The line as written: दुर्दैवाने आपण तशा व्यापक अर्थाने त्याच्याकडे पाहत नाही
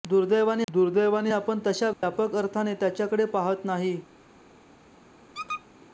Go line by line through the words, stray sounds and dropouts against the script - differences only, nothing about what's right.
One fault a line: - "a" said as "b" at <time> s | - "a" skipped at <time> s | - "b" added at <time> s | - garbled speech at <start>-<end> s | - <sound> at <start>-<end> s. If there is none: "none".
- "दुर्दैवाने" added at 0.7 s
- dropout at 1.9-2.0 s
- squeak at 5.3-5.6 s